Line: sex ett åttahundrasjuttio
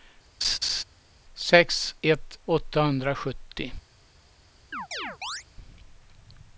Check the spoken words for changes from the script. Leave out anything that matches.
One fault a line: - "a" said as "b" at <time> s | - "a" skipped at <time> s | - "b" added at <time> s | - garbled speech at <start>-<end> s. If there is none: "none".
none